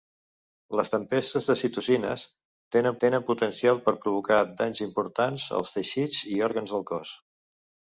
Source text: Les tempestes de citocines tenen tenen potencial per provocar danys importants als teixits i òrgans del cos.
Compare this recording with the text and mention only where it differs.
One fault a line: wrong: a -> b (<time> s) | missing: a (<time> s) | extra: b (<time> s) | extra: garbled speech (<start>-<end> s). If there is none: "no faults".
no faults